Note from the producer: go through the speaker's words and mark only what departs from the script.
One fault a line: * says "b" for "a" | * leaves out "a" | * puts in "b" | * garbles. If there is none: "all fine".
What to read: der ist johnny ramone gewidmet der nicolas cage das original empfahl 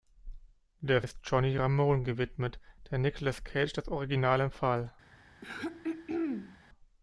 all fine